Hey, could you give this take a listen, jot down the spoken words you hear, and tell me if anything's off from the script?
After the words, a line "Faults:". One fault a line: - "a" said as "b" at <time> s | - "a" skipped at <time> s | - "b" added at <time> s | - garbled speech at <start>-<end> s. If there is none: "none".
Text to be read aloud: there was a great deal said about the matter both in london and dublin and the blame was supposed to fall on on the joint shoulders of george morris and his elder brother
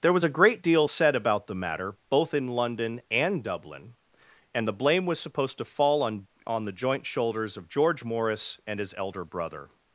there was a great deal said about the matter both in london and dublin and the blame was supposed to fall on on the joint shoulders of george morris and his elder brother
Faults:
none